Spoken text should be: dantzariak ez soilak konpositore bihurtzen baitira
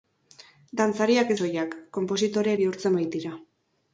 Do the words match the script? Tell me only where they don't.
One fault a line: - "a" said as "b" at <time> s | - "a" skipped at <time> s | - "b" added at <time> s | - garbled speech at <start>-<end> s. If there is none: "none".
none